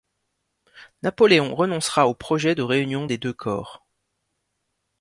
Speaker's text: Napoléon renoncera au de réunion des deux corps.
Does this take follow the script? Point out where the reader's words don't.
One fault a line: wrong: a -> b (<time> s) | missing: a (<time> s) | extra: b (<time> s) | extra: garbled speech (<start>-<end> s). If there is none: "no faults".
extra: projet (2.1 s)